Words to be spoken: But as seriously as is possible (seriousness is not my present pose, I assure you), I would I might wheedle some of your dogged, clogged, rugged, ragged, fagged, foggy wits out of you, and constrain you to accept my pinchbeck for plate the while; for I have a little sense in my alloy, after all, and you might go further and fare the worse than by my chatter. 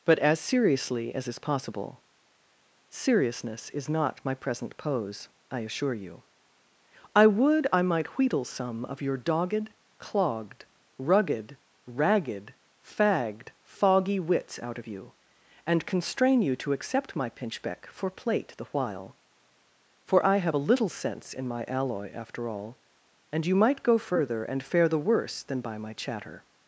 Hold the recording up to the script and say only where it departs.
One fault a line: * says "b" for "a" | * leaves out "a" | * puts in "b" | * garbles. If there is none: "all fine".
all fine